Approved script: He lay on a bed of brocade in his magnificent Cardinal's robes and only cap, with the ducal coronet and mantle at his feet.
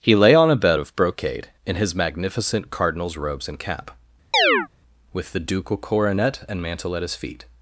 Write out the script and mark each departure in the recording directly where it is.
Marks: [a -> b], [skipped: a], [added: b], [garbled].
He lay on a bed of brocade in his magnificent Cardinal's robes and [skipped: only] cap, with the ducal coronet and mantle at his feet.